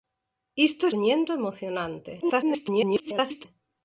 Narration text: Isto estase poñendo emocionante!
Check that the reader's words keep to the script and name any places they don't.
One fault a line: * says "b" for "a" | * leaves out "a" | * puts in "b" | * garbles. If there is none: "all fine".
* leaves out "estase"
* garbles